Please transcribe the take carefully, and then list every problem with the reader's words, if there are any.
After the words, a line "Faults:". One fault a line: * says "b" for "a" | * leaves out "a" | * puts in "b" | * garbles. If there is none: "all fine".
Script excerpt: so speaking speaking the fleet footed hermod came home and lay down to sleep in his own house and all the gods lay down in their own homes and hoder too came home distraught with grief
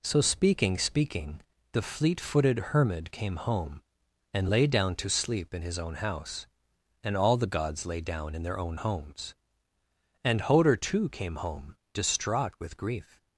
so speaking speaking the fleet footed hermod came home and lay down to sleep in his own house and all the gods lay down in their own homes and hoder too came home distraught with grief
Faults:
all fine